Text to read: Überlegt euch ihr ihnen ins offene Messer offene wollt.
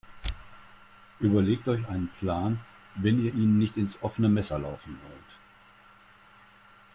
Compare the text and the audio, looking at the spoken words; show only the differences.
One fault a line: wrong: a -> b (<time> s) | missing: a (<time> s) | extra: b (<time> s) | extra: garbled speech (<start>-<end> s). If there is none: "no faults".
extra: einen Plan wenn (1.9 s)
extra: nicht (3.6 s)
wrong: offene -> laufen (4.6 s)